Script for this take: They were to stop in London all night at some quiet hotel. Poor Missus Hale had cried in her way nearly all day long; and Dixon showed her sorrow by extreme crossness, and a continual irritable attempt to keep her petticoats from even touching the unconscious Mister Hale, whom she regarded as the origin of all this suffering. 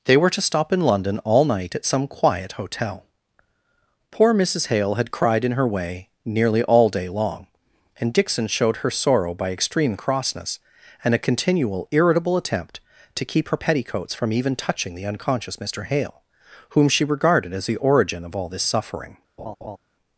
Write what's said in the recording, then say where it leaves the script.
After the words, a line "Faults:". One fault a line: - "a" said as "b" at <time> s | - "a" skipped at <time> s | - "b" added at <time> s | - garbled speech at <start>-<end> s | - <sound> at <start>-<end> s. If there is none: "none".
They were to stop in London all night at some quiet hotel. Poor Missus Hale had cried in her way nearly all day long; and Dixon showed her sorrow by extreme crossness, and a continual irritable attempt to keep her petticoats from even touching the unconscious Mister Hale, whom she regarded as the origin of all this suffering.
Faults:
- laugh at 19.4-19.8 s